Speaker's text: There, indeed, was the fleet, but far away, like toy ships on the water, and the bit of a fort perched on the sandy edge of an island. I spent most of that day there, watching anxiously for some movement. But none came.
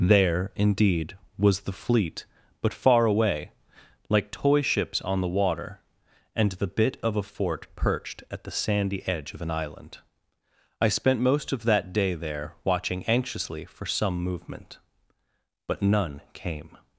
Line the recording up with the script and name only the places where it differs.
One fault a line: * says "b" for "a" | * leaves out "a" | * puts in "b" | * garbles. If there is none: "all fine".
* says "at" for "on"